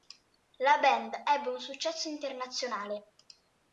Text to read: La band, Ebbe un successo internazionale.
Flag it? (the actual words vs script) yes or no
no